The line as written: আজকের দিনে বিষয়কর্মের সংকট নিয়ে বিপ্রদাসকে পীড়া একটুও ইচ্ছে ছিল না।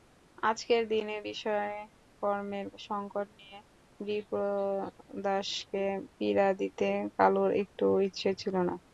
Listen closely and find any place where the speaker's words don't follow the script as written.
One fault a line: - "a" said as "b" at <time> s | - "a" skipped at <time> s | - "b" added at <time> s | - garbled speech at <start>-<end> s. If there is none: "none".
- "দিতে কালুর" added at 6.6 s